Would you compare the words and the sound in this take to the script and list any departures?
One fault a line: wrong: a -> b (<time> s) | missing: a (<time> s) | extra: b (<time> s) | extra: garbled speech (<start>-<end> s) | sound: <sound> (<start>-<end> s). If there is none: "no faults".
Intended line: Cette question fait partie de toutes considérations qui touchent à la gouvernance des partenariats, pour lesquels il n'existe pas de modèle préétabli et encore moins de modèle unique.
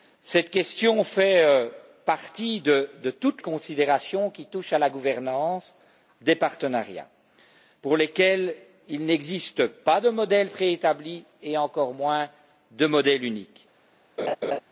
sound: laugh (14.2-14.6 s)